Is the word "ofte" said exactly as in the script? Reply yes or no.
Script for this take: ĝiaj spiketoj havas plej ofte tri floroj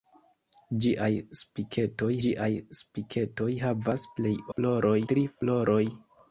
no